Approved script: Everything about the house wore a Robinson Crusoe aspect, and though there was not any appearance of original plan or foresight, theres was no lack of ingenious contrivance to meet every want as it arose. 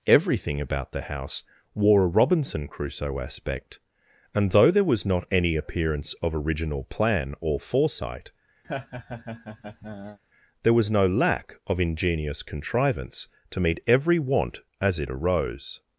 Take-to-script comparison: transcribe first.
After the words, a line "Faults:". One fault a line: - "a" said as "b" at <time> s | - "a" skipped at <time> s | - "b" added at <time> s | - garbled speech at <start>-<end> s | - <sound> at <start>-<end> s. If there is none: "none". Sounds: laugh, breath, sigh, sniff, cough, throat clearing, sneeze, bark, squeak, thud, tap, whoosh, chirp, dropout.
Everything about the house wore a Robinson Crusoe aspect, and though there was not any appearance of original plan or foresight, there was no lack of ingenious contrivance to meet every want as it arose.
Faults:
- laugh at 8.6-10.2 s
- "theres" said as "there" at 10.6 s